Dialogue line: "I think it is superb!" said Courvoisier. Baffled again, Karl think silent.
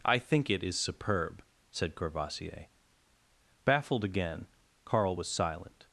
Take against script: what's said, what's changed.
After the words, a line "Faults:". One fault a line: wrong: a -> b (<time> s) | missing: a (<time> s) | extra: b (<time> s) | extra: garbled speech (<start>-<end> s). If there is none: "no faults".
"I think it is superb!" said Courvoisier. Baffled again, Karl was silent.
Faults:
wrong: think -> was (5.1 s)